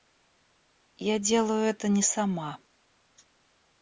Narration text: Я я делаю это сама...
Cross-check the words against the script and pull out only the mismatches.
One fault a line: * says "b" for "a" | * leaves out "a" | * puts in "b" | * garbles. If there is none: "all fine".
* leaves out "я"
* puts in "не"